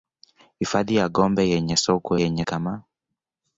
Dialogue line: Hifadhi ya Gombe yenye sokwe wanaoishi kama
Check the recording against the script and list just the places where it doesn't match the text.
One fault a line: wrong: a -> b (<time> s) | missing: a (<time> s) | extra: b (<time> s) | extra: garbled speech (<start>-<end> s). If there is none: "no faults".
wrong: wanaoishi -> yenye (2.2 s)